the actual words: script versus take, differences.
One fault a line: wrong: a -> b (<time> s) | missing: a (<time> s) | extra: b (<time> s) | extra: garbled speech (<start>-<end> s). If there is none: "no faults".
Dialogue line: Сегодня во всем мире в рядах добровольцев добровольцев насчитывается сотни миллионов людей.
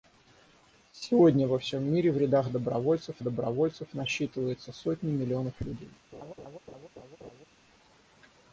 no faults